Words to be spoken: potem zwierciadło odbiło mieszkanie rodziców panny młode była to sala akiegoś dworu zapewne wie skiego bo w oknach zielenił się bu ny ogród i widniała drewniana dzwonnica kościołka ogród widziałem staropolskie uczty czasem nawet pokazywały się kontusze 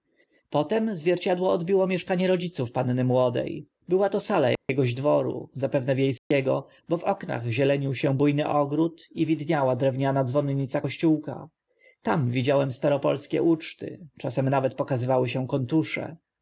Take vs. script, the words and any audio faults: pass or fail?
fail